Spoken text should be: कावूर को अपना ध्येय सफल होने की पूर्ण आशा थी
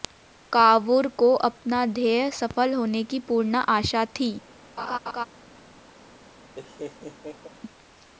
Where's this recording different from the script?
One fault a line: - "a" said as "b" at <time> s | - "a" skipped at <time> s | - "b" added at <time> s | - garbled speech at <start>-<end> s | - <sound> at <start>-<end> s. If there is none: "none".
- laugh at 4.8-5.3 s
- laugh at 6.5-7.5 s